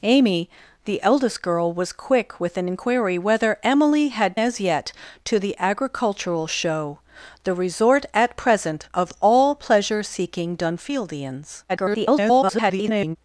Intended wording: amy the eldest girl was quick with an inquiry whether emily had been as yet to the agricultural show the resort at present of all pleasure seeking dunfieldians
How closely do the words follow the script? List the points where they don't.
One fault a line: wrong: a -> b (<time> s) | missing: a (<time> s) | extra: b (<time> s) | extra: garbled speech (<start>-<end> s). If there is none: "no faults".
missing: been (4.4 s)
extra: garbled speech (11.7-13.2 s)